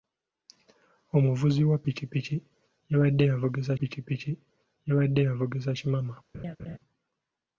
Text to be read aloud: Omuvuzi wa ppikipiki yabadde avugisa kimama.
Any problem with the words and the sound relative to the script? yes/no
yes